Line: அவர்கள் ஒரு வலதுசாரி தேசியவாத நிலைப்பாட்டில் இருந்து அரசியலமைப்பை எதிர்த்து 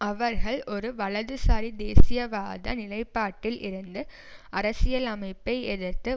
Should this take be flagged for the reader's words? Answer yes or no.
no